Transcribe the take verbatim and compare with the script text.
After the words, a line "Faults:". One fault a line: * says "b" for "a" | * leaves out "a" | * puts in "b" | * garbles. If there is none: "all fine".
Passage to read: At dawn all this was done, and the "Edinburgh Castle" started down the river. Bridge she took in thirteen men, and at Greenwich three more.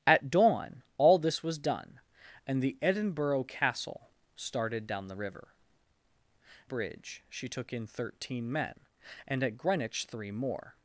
At dawn all this was done, and the "Edinburgh Castle" started down the river. Bridge she took in thirteen men, and at Greenwich three more.
Faults:
all fine